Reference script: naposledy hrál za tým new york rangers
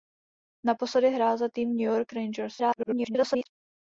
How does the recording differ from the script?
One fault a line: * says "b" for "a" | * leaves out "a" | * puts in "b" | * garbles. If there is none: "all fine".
* garbles